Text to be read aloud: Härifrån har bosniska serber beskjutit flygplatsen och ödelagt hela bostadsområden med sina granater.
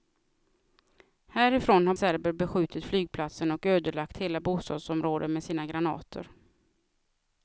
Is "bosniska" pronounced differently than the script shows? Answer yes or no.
yes